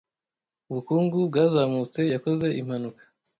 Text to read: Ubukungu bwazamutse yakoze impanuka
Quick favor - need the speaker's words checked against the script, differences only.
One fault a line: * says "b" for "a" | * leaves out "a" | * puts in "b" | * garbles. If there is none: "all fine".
all fine